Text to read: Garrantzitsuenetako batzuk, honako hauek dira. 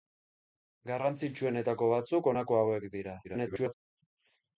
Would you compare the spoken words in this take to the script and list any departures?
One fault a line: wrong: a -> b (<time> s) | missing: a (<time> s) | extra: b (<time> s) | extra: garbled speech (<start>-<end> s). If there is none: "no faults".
extra: garbled speech (3.2-3.7 s)